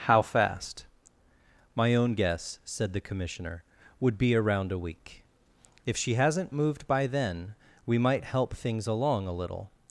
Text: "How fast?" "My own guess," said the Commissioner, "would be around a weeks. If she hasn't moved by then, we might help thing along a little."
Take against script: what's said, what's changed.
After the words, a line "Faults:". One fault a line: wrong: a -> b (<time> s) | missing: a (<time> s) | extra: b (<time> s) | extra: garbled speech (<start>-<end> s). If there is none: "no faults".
"How fast?" "My own guess," said the Commissioner, "would be around a week. If she hasn't moved by then, we might help things along a little."
Faults:
wrong: weeks -> week (4.8 s)
wrong: thing -> things (8.6 s)